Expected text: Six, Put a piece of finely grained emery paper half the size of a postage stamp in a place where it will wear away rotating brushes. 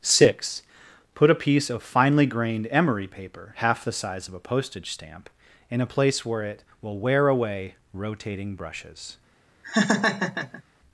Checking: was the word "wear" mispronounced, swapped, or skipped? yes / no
no